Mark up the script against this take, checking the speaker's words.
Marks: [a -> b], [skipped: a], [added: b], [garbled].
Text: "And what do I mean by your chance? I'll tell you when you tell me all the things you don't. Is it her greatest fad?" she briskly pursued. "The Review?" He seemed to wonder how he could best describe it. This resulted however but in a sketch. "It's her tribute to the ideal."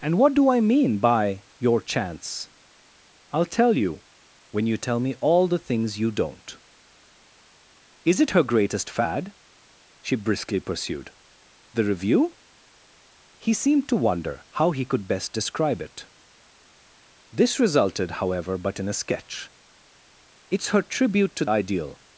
"And what do I mean by your chance? I'll tell you when you tell me all the things you don't. Is it her greatest fad?" she briskly pursued. "The Review?" He seemed to wonder how he could best describe it. This resulted however but in a sketch. "It's her tribute to [skipped: the] ideal."